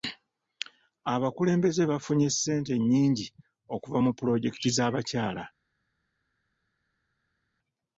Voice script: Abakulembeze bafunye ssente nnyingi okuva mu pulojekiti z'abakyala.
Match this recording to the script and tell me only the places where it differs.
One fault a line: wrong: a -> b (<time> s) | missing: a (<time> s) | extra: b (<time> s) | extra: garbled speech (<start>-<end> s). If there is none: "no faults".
no faults